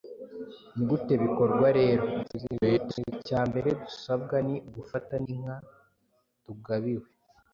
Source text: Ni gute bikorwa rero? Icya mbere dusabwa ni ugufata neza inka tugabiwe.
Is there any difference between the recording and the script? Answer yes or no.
yes